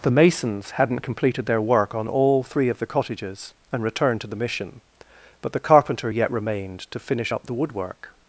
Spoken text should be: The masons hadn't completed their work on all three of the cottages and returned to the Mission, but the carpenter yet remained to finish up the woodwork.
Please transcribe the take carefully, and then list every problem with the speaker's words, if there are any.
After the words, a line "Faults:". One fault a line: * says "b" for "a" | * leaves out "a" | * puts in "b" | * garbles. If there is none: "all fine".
The masons hadn't completed their work on all three of the cottages and returned to the Mission, but the carpenter yet remained to finish up the woodwork.
Faults:
all fine